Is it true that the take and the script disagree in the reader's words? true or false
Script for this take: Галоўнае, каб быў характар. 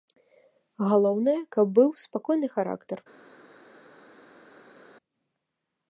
true